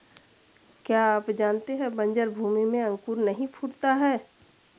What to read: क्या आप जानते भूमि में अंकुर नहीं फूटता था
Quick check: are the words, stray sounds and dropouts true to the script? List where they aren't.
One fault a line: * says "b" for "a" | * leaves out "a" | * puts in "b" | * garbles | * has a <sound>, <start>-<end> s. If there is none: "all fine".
* puts in "है बन्जर"
* says "है" for "था"